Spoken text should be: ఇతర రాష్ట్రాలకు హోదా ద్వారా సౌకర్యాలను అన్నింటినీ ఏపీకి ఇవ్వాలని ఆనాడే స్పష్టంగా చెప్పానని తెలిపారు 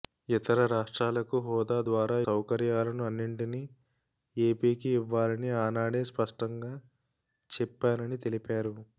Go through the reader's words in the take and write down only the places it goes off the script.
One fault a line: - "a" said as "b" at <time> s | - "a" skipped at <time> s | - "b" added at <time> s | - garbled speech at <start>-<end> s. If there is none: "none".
none